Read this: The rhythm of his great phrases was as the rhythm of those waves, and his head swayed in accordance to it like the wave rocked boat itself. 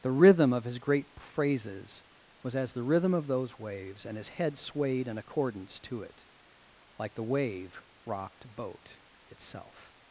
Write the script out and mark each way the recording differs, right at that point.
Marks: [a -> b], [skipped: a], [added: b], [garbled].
The rhythm of his great phrases was as the rhythm of those waves, and his head swayed in accordance to it like the wave rocked boat itself.